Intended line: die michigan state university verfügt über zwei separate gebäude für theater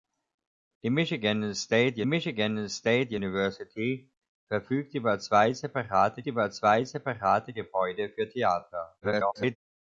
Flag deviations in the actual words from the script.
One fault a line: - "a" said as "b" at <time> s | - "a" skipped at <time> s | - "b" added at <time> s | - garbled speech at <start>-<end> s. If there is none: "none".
- "michigan state" added at 2.0 s
- "über zwei separate" added at 6.3 s
- garbled speech at 9.0-9.6 s